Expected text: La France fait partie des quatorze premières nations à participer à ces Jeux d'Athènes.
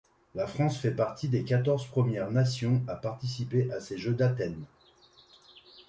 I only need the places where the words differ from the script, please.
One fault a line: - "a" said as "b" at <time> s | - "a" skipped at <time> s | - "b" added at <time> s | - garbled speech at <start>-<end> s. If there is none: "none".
none